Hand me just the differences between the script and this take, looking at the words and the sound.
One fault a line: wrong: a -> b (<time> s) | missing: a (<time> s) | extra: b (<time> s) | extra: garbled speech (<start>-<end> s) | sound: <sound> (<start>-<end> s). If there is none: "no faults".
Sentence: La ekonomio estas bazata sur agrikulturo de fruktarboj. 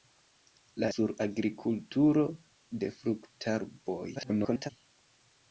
missing: ekonomio estas bazata (0.9 s)
extra: garbled speech (4.1-4.7 s)